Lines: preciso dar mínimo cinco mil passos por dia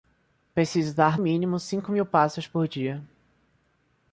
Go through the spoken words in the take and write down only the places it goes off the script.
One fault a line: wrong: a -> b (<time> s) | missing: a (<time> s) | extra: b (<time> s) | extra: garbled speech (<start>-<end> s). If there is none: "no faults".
no faults